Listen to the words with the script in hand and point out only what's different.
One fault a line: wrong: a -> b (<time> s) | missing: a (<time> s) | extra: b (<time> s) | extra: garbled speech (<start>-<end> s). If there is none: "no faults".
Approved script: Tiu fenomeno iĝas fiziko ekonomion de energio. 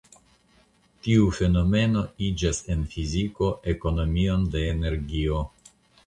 extra: en (2.8 s)